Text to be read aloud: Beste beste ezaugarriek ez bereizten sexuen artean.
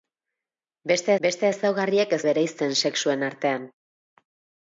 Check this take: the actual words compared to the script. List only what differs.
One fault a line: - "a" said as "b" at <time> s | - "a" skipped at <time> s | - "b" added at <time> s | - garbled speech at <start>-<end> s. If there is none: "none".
none